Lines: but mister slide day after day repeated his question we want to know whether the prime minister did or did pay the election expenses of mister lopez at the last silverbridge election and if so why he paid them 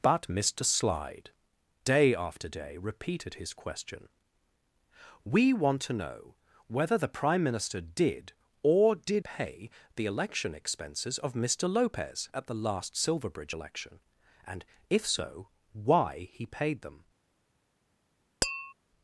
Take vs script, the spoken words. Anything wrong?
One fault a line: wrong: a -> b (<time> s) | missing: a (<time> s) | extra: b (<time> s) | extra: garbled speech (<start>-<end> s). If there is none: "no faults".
no faults